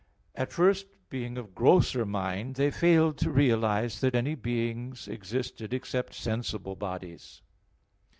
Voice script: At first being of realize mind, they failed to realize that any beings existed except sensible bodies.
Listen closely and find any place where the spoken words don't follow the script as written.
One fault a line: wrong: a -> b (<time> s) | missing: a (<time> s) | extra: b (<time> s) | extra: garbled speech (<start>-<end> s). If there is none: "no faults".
wrong: realize -> grosser (1.5 s)